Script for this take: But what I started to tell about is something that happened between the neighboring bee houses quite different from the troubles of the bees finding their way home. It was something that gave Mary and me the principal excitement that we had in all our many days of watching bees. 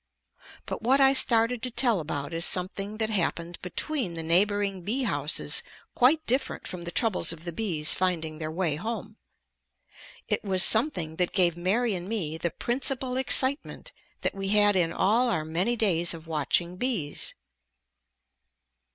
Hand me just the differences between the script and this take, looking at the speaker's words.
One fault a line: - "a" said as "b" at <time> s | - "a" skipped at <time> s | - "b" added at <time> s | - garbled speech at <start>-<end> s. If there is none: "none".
none